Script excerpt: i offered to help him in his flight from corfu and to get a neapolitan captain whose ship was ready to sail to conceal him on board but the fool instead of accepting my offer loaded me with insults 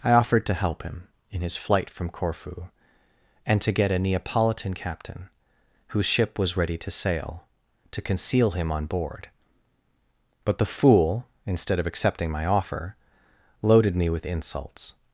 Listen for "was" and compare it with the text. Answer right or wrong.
right